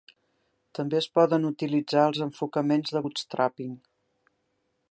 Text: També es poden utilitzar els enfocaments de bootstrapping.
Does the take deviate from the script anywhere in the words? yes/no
no